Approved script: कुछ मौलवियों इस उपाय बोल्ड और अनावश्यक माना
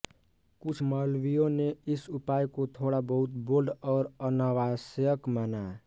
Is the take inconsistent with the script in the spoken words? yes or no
yes